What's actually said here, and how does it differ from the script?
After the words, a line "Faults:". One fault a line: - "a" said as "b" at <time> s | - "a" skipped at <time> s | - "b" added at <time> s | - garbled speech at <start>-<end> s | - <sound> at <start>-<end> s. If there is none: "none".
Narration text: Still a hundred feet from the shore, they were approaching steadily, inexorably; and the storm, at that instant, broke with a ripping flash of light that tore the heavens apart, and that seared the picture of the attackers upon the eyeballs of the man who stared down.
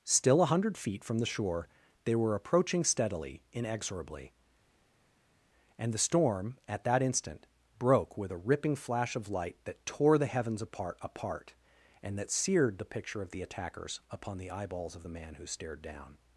Still a hundred feet from the shore, they were approaching steadily, inexorably; and the storm, at that instant, broke with a ripping flash of light that tore the heavens apart apart, and that seared the picture of the attackers upon the eyeballs of the man who stared down.
Faults:
- "apart" added at 11.0 s